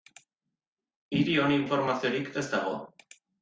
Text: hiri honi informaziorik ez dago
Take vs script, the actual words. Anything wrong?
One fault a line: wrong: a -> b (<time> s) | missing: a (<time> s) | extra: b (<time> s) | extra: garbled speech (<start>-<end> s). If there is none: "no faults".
no faults